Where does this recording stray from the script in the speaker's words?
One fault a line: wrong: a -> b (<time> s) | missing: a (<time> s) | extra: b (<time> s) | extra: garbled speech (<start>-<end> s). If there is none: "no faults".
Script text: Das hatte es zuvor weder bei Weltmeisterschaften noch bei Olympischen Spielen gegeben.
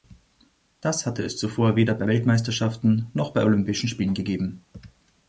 no faults